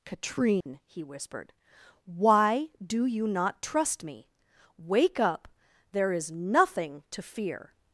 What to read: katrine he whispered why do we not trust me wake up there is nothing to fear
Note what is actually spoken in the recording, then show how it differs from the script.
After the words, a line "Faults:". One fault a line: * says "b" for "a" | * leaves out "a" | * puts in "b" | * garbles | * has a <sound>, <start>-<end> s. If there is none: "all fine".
katrine he whispered why do you not trust me wake up there is nothing to fear
Faults:
* has a dropout, 0.6-0.7 s
* says "you" for "we"